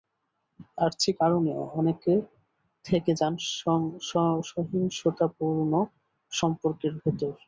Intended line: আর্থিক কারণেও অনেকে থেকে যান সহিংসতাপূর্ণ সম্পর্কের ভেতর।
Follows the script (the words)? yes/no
yes